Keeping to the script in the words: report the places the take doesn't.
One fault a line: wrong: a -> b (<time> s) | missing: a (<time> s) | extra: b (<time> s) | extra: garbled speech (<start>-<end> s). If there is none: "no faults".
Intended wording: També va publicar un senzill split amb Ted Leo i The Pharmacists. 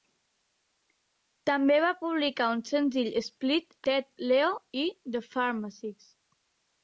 missing: amb (3.8 s)